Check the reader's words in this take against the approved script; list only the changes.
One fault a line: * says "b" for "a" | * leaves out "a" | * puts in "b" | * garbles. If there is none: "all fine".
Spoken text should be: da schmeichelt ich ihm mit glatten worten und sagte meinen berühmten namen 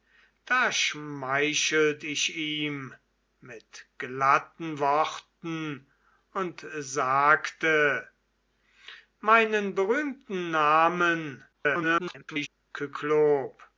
* garbles